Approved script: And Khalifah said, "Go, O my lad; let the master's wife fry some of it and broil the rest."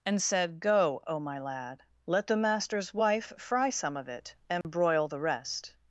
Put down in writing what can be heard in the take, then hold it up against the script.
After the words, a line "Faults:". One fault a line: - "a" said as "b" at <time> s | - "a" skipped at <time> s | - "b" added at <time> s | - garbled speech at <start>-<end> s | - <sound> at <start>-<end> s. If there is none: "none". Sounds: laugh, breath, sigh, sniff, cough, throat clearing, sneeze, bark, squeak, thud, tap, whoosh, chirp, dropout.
And said, "Go, O my lad; let the master's wife fry some of it and broil the rest."
Faults:
- "Khalifah" skipped at 0.2 s
- dropout at 4.6-4.6 s